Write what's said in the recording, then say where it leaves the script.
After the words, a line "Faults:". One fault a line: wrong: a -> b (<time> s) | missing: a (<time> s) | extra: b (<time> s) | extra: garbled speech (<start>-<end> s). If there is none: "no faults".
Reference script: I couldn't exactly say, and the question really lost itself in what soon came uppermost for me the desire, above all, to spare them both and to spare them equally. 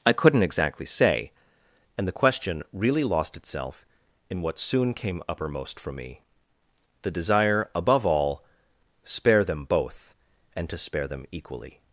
I couldn't exactly say, and the question really lost itself in what soon came uppermost for me the desire, above all, spare them both and to spare them equally.
Faults:
missing: to (8.4 s)